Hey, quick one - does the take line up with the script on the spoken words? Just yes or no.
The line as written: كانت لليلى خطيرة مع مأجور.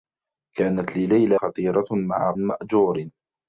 yes